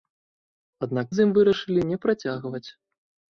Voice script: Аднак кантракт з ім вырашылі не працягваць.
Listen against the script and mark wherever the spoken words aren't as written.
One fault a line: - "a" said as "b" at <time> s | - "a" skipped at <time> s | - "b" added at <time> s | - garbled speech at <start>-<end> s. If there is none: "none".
- "кантракт" skipped at 1.1 s